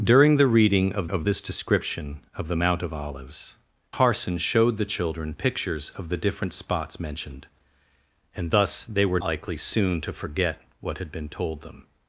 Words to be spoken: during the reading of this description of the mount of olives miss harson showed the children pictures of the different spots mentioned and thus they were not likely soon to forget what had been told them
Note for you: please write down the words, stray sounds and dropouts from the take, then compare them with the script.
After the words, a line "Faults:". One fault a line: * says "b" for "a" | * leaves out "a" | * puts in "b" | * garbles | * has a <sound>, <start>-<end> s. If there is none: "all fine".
during the reading of of this description of the mount of olives harson showed the children pictures of the different spots mentioned and thus they were likely soon to forget what had been told them
Faults:
* puts in "of"
* leaves out "miss"
* leaves out "not"